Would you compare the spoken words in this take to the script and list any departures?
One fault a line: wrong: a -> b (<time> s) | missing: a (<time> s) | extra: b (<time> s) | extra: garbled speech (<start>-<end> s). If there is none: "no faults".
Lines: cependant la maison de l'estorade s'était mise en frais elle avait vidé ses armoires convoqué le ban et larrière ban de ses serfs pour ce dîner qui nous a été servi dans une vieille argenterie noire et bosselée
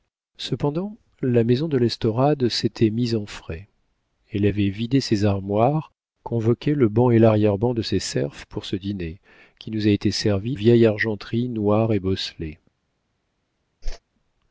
missing: dans une (10.6 s)